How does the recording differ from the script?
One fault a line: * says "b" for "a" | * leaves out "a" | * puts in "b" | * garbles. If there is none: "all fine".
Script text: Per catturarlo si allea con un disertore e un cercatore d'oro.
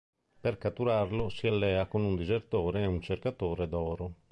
all fine